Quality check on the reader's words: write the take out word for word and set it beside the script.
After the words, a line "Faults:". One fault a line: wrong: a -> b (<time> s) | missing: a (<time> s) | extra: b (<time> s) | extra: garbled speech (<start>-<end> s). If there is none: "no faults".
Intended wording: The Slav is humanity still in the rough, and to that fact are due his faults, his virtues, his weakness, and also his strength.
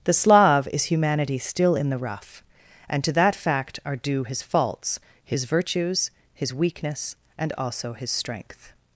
The Slav is humanity still in the rough, and to that fact are due his faults, his virtues, his weakness, and also his strength.
Faults:
no faults